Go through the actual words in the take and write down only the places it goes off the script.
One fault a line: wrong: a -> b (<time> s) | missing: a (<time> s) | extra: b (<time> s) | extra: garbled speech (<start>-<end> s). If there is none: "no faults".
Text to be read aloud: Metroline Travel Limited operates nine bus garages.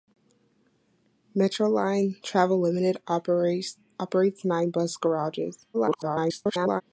extra: garbled speech (5.7-6.8 s)